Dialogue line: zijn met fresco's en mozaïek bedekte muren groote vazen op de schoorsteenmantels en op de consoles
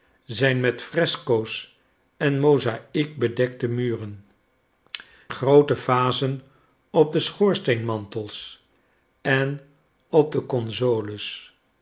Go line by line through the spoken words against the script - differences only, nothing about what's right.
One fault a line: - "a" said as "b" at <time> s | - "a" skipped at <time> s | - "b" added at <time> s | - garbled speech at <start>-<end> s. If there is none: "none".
none